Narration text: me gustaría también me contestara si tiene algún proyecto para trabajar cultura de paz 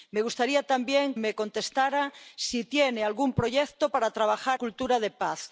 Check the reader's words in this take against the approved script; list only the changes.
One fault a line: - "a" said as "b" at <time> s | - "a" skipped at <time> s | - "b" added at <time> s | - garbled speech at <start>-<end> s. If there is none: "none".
none